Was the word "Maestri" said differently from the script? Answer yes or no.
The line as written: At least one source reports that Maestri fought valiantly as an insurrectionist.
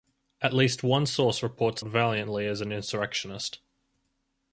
yes